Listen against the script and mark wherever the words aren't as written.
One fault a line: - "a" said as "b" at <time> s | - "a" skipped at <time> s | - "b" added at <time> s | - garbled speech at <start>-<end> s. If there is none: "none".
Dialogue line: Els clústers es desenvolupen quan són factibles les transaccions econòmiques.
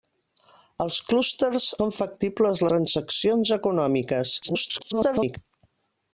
- "es desenvolupen quan" skipped at 1.7 s
- "les" skipped at 2.6 s
- garbled speech at 4.4-5.4 s